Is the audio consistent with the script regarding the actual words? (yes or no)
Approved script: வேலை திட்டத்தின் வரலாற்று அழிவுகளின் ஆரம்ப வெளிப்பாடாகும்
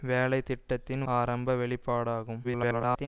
no